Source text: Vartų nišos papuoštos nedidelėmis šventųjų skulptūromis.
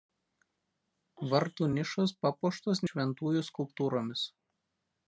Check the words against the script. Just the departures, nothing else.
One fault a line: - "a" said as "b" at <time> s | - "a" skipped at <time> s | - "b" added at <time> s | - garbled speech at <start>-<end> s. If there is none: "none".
- "nedidelėmis" skipped at 2.8 s